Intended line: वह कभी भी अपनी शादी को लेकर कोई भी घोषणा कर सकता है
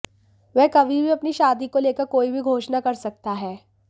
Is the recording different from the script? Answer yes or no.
no